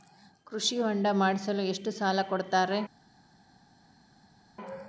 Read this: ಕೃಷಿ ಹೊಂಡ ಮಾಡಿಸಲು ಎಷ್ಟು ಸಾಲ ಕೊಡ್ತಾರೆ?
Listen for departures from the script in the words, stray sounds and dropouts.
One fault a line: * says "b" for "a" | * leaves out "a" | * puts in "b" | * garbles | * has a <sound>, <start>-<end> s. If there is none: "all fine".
all fine